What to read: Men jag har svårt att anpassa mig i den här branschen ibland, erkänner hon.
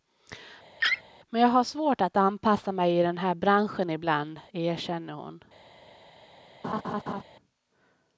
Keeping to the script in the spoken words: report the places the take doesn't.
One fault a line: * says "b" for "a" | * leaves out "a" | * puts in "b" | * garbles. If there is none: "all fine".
all fine